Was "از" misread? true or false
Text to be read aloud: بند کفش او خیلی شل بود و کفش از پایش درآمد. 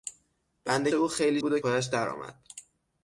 true